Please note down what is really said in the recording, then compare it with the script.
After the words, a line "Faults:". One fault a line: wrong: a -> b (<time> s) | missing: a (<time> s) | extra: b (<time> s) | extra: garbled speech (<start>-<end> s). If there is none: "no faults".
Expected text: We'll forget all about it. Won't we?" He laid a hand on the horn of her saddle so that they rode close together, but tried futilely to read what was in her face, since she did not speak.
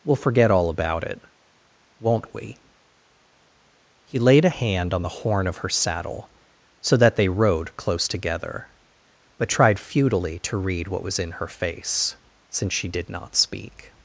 We'll forget all about it. Won't we?" He laid a hand on the horn of her saddle so that they rode close together, but tried futilely to read what was in her face, since she did not speak.
Faults:
no faults